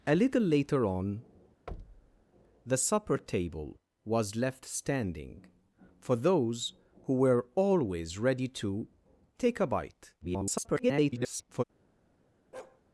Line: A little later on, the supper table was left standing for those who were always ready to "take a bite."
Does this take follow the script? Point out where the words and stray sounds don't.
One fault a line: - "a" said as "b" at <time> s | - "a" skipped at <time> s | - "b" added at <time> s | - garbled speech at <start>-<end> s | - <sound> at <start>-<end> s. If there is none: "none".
- thud at 1.7-2.2 s
- garbled speech at 10.2-11.6 s
- bark at 12.5-12.8 s